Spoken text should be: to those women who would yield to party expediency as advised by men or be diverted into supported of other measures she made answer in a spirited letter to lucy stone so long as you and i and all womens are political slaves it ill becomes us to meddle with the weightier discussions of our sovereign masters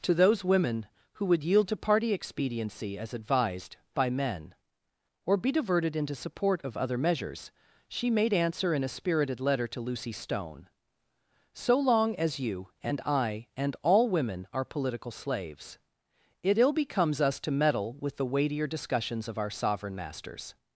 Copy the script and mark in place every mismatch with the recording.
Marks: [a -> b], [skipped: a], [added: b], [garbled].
to those women who would yield to party expediency as advised by men or be diverted into [supported -> support] of other measures she made answer in a spirited letter to lucy stone so long as you and i and all [womens -> women] are political slaves it ill becomes us to meddle with the weightier discussions of our sovereign masters